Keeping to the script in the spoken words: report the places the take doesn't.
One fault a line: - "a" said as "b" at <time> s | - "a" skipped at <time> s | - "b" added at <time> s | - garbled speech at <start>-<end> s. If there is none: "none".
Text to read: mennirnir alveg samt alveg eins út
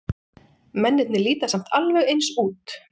- "alveg" said as "líta" at 1.3 s